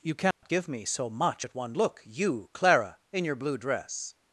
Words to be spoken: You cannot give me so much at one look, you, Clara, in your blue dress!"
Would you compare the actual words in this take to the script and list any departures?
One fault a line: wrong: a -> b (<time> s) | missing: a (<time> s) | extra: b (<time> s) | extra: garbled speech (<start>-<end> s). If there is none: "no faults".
no faults